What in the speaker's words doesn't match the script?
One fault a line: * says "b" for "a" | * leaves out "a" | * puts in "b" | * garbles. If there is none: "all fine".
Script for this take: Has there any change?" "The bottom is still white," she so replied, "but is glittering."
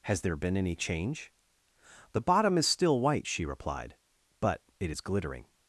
* puts in "been"
* leaves out "so"
* puts in "it"